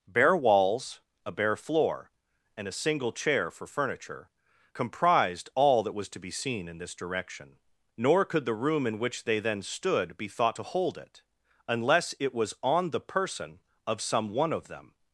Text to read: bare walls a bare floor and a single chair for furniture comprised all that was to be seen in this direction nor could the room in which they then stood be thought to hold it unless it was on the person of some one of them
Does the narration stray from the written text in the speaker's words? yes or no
no